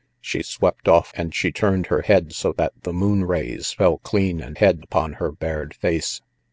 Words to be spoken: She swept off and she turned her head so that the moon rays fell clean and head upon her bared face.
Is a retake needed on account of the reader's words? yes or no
no